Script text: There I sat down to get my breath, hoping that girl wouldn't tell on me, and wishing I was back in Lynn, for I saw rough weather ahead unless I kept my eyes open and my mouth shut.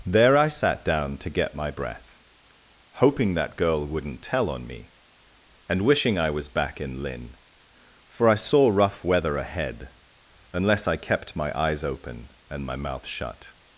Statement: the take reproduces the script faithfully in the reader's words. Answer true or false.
true